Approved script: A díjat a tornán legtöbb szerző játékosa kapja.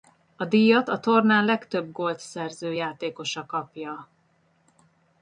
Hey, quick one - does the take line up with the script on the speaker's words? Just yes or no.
no